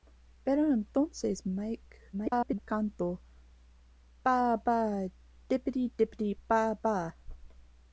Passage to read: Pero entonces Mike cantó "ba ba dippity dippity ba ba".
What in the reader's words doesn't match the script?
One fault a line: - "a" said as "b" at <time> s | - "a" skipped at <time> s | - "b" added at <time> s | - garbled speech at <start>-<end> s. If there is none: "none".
- garbled speech at 2.1-2.6 s